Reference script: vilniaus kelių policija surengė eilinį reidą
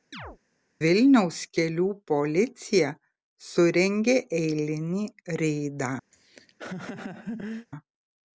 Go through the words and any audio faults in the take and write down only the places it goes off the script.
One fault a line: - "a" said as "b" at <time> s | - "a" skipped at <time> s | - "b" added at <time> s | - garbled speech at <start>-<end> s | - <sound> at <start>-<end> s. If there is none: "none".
- chirp at 0.1-0.4 s
- laugh at 6.1-7.7 s